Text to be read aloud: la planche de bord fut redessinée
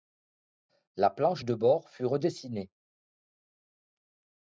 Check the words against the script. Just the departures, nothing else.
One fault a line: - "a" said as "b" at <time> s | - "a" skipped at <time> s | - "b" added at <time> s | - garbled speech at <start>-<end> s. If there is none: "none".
none